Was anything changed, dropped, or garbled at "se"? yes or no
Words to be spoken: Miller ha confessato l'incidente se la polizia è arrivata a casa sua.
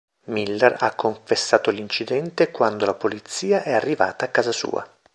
yes